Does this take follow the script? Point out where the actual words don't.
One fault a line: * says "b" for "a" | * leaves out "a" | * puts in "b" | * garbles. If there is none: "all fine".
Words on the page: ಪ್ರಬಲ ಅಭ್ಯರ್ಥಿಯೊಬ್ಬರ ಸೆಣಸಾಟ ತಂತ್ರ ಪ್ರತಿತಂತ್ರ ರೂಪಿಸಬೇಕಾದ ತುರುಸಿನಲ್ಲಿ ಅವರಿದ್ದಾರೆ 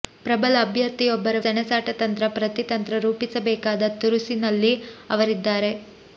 all fine